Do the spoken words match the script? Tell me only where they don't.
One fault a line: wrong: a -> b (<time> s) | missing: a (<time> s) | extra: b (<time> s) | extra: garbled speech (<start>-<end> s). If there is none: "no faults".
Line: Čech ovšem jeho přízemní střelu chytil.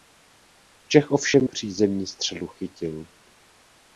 missing: jeho (1.5 s)